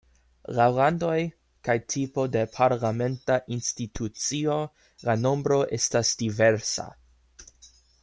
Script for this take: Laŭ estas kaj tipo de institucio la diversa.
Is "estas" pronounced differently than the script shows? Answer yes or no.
yes